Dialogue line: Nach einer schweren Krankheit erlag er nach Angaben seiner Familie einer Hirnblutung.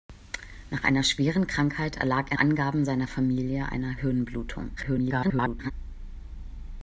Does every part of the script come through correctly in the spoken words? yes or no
no